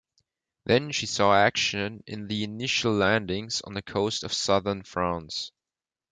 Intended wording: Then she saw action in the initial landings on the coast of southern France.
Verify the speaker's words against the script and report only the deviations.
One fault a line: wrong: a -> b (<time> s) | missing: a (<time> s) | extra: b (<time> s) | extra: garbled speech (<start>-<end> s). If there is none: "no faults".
no faults